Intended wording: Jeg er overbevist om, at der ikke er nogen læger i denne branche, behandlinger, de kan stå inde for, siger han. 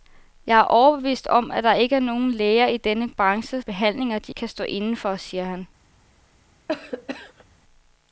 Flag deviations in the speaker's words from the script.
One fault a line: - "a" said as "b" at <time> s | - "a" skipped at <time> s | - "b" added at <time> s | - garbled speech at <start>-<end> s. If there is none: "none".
none